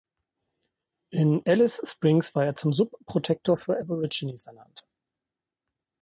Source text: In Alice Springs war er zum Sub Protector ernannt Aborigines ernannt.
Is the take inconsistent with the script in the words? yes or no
yes